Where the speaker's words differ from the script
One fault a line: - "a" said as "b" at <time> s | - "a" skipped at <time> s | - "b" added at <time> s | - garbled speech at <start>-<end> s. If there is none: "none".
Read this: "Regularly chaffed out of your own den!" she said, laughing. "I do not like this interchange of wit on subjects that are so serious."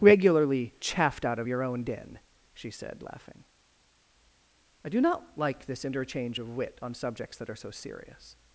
none